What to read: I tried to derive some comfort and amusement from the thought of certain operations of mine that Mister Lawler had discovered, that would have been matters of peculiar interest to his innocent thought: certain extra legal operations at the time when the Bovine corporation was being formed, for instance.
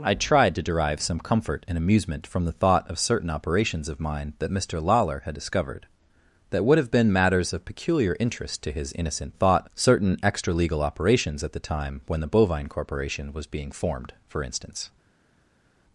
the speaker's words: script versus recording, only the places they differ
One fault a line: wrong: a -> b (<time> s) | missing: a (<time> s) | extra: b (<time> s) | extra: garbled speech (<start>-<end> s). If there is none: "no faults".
no faults